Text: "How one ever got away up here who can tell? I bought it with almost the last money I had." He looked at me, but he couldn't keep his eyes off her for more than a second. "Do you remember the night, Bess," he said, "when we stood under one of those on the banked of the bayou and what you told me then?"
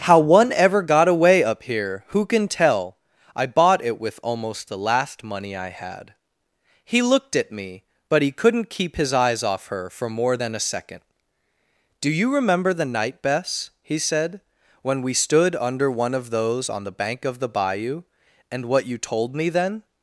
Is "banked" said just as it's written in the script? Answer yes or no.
no